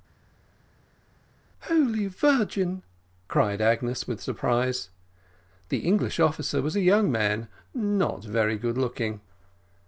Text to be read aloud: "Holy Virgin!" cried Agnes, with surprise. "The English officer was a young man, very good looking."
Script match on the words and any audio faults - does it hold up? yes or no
no